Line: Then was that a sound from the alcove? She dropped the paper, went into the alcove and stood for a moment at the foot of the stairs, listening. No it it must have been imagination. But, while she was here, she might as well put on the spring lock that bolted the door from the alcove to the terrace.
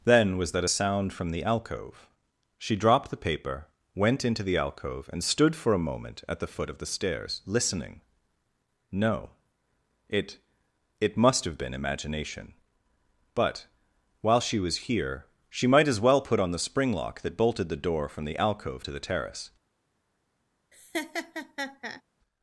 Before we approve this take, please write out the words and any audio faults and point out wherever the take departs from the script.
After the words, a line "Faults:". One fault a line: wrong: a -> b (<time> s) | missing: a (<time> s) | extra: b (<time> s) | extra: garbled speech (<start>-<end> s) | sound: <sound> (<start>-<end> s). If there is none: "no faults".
Then was that a sound from the alcove? She dropped the paper, went into the alcove and stood for a moment at the foot of the stairs, listening. No it it must have been imagination. But, while she was here, she might as well put on the spring lock that bolted the door from the alcove to the terrace.
Faults:
sound: laugh (20.7-22.0 s)